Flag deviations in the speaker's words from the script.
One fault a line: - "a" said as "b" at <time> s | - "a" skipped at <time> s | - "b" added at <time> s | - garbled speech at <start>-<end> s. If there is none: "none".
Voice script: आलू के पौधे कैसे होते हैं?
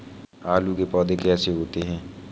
none